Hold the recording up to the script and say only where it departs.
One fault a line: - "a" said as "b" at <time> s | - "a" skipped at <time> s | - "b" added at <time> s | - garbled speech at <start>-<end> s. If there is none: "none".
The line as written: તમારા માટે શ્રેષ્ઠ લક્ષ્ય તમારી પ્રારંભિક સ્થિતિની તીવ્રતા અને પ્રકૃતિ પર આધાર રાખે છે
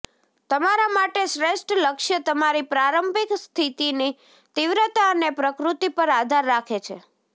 none